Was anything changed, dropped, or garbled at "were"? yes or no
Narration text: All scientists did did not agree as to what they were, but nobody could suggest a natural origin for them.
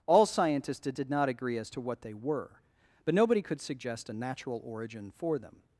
no